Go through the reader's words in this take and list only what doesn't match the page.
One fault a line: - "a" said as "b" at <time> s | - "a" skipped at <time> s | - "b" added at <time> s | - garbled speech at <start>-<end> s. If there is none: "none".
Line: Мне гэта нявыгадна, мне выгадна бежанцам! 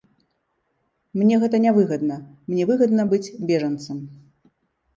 - "быць" added at 3.1 s